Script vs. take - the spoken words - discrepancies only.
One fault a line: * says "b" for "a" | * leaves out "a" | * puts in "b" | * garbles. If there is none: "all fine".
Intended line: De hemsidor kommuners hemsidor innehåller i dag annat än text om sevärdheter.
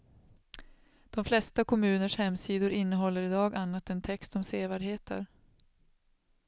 * says "flesta" for "hemsidor"